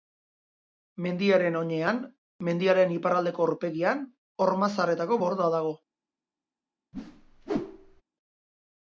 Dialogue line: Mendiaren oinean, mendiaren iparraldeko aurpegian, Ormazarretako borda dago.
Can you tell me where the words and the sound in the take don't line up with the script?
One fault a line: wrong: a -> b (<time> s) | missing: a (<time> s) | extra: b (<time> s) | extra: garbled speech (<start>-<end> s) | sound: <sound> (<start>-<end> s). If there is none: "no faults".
sound: whoosh (6.9-8.0 s)